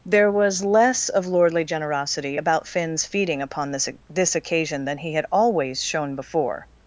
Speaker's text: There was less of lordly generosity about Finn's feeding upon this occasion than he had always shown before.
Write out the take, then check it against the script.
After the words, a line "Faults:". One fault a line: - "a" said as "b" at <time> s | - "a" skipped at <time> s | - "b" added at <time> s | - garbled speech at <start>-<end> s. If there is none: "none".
There was less of lordly generosity about Finn's feeding upon this this occasion than he had always shown before.
Faults:
- "this" added at 4.1 s